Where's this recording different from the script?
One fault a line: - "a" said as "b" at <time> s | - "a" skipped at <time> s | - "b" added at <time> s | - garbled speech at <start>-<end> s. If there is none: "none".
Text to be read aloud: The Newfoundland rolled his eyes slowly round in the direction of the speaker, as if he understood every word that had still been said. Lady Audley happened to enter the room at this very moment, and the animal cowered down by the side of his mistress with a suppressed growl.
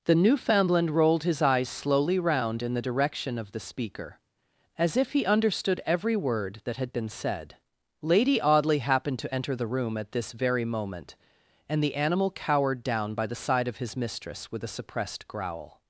- "still" skipped at 6.9 s